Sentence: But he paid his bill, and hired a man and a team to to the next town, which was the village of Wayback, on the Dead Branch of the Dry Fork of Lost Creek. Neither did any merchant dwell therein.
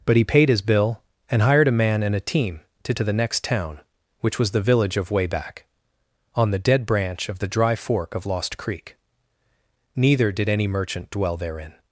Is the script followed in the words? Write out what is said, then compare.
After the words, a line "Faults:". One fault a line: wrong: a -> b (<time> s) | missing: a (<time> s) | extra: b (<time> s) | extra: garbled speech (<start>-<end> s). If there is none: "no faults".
But he paid his bill, and hired a man and a team to to the next town, which was the village of Wayback, on the Dead Branch of the Dry Fork of Lost Creek. Neither did any merchant dwell therein.
Faults:
no faults